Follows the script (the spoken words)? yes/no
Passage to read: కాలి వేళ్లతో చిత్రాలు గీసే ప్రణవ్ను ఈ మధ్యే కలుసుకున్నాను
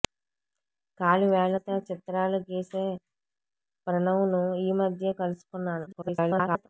no